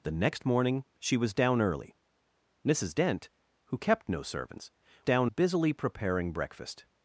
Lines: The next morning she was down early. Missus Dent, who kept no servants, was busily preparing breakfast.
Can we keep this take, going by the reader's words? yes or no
no